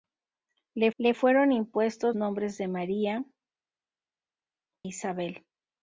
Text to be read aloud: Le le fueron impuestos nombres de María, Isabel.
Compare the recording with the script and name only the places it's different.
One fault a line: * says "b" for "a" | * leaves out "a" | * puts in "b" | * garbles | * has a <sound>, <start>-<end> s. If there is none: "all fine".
all fine